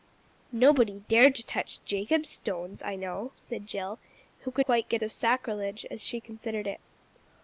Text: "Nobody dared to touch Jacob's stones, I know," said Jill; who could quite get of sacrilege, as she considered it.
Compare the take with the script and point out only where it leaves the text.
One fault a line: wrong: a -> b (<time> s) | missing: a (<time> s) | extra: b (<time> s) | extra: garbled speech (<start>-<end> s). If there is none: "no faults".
no faults